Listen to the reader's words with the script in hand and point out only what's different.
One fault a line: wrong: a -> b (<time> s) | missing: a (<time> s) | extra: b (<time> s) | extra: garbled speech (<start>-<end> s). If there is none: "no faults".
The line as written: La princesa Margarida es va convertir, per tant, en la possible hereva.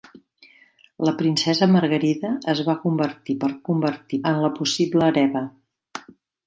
wrong: tant -> convertir (3.7 s)